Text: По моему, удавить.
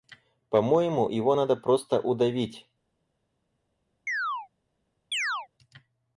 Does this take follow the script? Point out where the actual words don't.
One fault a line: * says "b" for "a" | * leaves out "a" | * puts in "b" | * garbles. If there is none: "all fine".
* puts in "его надо просто"